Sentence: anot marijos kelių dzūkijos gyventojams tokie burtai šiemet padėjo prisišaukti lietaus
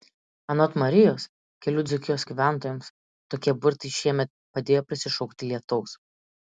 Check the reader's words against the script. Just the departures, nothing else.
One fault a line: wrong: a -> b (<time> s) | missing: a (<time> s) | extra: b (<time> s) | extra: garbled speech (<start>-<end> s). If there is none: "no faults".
no faults